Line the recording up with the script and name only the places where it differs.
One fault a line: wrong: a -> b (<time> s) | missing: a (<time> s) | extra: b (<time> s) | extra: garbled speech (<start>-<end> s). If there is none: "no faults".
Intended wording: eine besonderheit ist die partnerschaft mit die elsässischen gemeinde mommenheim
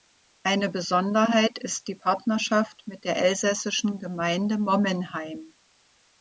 wrong: die -> der (3.1 s)